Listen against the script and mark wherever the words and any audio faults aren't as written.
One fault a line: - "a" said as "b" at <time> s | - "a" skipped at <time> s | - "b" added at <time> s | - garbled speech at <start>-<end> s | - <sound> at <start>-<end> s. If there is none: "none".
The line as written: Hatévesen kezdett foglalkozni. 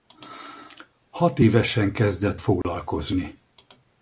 - dropout at 2.6-2.6 s